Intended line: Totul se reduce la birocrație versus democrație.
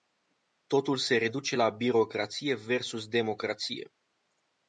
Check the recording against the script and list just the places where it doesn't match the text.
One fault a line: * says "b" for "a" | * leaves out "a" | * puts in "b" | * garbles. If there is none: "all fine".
all fine